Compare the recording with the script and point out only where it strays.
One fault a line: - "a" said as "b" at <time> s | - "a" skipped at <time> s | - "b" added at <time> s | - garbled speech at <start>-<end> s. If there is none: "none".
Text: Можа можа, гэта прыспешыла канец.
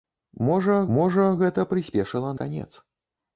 none